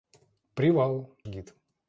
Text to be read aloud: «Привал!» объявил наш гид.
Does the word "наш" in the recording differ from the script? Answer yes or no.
yes